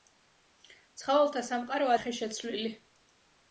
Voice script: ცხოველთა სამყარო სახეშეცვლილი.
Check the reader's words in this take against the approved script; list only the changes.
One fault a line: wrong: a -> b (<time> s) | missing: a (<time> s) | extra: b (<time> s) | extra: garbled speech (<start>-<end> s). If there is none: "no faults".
no faults